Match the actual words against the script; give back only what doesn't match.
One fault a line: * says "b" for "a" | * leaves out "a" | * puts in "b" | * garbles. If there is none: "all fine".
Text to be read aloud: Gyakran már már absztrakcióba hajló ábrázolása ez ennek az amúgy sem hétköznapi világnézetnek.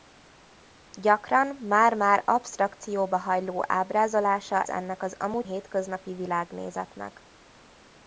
* leaves out "ez"
* leaves out "sem"